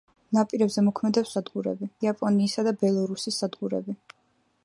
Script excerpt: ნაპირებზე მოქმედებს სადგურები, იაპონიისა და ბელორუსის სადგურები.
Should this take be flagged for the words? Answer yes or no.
no